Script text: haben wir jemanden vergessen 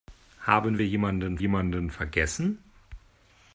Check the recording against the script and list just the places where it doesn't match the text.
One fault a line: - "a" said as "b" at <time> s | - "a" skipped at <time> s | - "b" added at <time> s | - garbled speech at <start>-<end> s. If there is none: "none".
- "jemanden" added at 1.4 s